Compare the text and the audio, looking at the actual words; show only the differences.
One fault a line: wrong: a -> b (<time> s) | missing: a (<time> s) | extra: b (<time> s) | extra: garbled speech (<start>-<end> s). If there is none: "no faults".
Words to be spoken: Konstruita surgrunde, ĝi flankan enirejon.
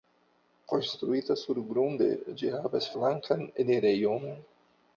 extra: havas (2.6 s)